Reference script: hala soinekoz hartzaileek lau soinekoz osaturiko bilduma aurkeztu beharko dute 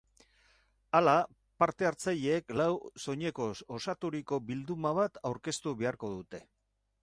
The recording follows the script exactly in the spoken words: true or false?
false